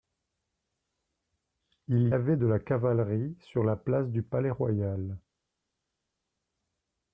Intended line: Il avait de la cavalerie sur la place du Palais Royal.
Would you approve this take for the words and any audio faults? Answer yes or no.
yes